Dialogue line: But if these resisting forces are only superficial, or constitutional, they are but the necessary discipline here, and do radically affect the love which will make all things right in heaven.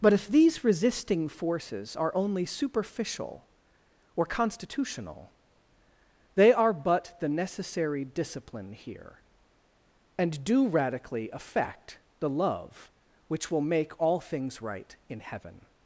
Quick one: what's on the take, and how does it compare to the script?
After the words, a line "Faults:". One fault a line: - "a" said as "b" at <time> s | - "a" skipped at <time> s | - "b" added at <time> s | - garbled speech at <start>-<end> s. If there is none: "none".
But if these resisting forces are only superficial, or constitutional, they are but the necessary discipline here, and do radically affect the love which will make all things right in heaven.
Faults:
none